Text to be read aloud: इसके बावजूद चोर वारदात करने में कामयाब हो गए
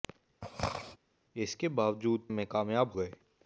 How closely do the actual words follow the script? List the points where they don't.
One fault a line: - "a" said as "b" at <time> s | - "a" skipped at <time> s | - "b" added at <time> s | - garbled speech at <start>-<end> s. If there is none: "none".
- "चोर वारदात करने" skipped at 2.3 s
- "हो" skipped at 2.9 s